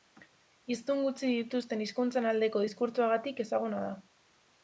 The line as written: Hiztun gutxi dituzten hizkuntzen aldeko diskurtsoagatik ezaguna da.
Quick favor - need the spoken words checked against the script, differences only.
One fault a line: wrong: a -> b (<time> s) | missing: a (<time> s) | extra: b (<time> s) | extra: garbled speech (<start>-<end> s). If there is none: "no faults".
no faults